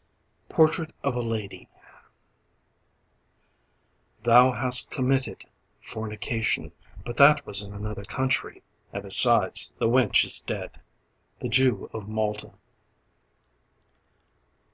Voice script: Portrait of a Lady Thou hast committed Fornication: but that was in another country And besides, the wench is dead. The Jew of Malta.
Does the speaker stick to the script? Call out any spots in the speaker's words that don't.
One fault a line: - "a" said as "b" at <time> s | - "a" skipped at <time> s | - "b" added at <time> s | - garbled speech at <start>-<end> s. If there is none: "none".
none